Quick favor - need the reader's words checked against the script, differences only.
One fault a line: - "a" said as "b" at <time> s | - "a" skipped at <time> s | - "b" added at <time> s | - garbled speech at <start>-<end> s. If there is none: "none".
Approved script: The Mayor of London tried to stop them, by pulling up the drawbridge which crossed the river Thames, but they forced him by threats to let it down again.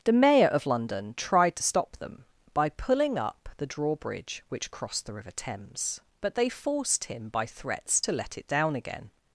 none